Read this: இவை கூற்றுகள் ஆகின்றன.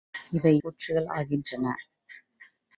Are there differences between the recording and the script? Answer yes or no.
no